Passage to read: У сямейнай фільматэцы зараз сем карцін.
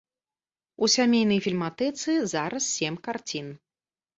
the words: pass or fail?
pass